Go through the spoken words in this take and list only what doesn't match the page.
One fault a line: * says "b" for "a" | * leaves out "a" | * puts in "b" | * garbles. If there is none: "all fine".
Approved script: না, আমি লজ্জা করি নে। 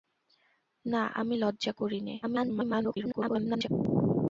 * garbles